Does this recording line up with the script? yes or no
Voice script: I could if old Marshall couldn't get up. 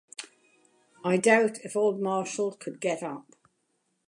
no